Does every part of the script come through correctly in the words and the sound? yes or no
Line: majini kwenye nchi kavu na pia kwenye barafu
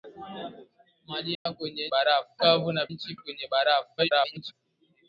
no